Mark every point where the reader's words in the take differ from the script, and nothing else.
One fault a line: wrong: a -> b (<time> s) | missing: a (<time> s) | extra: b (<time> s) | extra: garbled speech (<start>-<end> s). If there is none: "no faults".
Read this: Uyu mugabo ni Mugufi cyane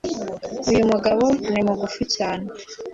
no faults